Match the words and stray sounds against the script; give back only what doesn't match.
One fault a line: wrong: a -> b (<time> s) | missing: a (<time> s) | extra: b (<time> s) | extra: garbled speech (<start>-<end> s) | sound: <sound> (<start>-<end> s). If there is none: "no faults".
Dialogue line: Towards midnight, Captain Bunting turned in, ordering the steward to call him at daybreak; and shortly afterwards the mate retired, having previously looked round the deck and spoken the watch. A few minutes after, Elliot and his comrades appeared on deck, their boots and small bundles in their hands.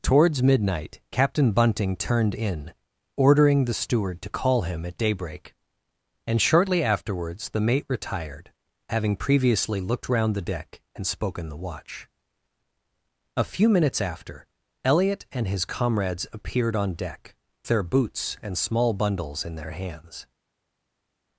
no faults